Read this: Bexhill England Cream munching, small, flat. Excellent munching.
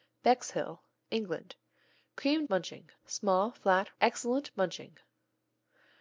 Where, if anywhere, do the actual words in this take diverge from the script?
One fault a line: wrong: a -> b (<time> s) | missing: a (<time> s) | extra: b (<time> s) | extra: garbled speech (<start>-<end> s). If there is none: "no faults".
no faults